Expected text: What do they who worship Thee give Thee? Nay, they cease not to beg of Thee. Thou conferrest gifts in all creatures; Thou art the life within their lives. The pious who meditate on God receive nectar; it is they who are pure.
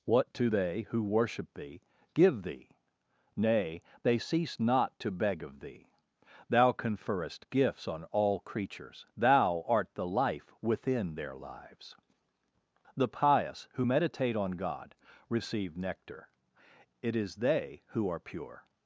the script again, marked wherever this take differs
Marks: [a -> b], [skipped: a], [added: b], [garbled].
What do they who worship Thee give Thee? Nay, they cease not to beg of Thee. Thou conferrest gifts [in -> on] all creatures; Thou art the life within their lives. The pious who meditate on God receive nectar; it is they who are pure.